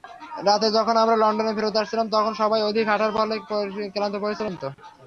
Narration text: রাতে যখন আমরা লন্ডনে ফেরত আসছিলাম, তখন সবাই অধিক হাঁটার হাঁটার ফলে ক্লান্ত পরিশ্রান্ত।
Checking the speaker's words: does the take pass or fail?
fail